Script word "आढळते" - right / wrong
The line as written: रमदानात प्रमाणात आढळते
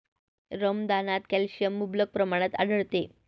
right